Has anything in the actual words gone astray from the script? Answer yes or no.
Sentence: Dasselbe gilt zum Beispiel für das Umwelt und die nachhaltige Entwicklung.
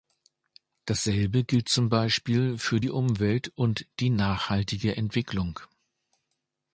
yes